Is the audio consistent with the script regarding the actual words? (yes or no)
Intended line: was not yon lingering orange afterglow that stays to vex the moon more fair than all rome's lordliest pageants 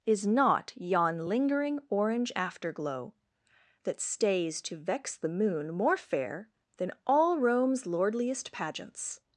no